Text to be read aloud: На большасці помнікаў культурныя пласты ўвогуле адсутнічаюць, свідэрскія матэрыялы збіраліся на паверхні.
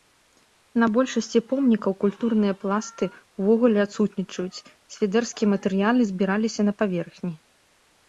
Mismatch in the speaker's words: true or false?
false